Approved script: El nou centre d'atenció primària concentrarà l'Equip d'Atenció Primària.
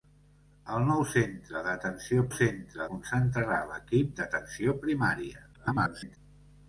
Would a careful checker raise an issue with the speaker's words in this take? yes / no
yes